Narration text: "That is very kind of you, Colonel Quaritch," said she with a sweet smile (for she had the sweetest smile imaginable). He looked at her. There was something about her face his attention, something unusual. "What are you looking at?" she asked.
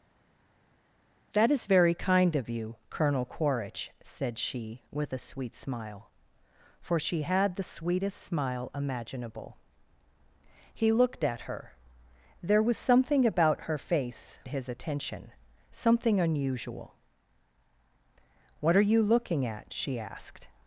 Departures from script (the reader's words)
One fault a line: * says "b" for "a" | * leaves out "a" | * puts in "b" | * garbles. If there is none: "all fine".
all fine